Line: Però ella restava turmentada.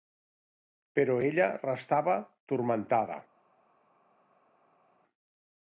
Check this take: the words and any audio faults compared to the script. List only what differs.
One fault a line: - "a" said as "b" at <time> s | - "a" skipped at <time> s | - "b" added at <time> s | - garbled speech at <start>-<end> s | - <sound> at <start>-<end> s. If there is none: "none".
none